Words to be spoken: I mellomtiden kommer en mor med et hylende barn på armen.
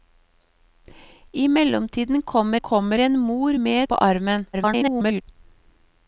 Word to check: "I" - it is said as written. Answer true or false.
true